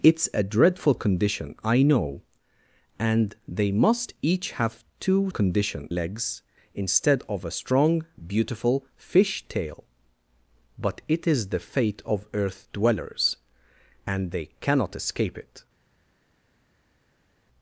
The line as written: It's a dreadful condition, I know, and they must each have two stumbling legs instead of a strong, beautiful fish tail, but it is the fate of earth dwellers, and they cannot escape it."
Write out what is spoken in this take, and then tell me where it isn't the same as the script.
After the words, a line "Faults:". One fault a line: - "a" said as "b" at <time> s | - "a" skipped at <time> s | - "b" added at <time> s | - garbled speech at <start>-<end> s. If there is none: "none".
It's a dreadful condition, I know, and they must each have two condition legs instead of a strong, beautiful fish tail, but it is the fate of earth dwellers, and they cannot escape it."
Faults:
- "stumbling" said as "condition" at 5.3 s